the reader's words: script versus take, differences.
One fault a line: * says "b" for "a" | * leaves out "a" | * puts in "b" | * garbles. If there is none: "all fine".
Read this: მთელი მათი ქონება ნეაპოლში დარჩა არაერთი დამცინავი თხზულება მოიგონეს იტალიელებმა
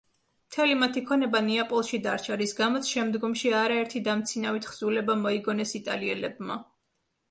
* puts in "რის გამოც შემდგომში"